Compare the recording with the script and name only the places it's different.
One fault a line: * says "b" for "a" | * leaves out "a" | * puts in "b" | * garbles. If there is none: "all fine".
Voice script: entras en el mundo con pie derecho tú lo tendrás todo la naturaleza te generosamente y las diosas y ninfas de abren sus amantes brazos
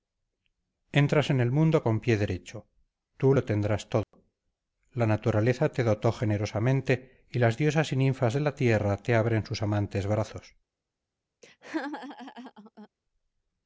* puts in "dotó"
* puts in "la tierra te"